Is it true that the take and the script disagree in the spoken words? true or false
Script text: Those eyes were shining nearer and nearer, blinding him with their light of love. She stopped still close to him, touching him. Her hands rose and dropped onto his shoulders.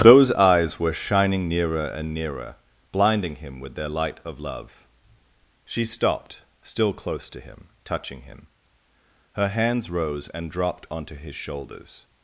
false